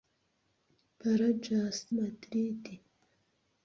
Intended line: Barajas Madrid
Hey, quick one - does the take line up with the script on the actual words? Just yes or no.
yes